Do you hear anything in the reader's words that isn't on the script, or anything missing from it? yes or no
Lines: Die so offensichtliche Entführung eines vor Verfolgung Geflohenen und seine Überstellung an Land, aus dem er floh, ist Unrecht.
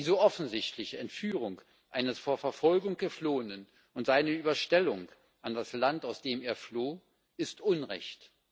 yes